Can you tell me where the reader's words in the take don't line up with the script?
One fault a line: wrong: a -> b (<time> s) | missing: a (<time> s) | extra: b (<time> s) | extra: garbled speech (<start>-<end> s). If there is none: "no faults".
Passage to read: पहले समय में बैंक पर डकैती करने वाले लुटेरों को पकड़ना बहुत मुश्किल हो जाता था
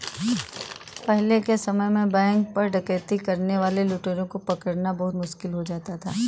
extra: के (1.4 s)